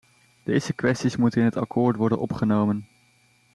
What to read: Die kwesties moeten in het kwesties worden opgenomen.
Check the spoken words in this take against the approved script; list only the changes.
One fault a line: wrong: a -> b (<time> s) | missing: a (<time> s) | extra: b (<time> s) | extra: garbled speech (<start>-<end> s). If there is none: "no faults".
wrong: Die -> Deze (0.4 s)
wrong: kwesties -> akkoord (1.6 s)